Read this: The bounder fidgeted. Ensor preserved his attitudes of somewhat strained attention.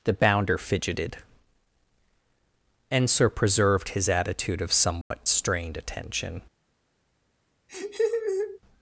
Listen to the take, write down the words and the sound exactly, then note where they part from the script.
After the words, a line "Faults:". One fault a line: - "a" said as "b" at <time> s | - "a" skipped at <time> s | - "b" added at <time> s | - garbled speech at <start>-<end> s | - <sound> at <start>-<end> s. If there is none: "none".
The bounder fidgeted. Ensor preserved his attitude of somewhat strained attention.
Faults:
- "attitudes" said as "attitude" at 4.1 s
- dropout at 5.0-5.1 s
- laugh at 7.7-8.6 s